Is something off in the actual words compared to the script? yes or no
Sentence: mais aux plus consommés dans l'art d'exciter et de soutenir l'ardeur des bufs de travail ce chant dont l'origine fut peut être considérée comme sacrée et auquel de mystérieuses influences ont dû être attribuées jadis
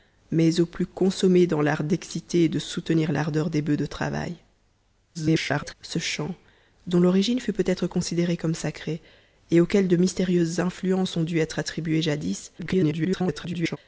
yes